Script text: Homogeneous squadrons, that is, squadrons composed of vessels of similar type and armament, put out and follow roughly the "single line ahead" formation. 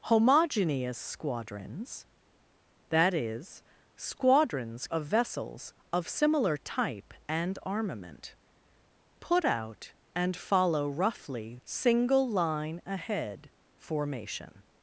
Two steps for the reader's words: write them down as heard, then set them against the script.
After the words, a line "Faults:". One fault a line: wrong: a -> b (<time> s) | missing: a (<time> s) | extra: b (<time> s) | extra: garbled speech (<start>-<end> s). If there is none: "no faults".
Homogeneous squadrons, that is, squadrons of vessels of similar type and armament, put out and follow roughly "single line ahead" formation.
Faults:
missing: composed (4.9 s)
missing: the (11.6 s)